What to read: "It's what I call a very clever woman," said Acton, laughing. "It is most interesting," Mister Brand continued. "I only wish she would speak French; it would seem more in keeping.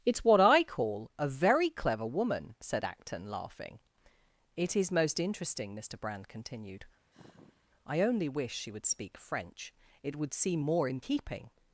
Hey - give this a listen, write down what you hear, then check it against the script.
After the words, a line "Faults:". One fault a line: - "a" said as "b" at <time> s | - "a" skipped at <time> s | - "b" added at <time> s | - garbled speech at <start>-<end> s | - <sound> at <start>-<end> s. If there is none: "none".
"It's what I call a very clever woman," said Acton, laughing. "It is most interesting," Mister Brand continued. "I only wish she would speak French; it would seem more in keeping.
Faults:
- sigh at 7.1-7.7 s